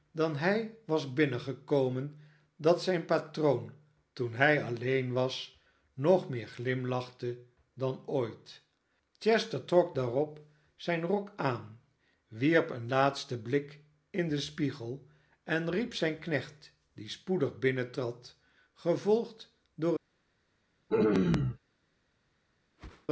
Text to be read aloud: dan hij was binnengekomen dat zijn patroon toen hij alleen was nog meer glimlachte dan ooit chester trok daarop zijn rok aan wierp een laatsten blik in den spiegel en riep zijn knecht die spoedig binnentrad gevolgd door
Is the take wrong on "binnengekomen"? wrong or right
right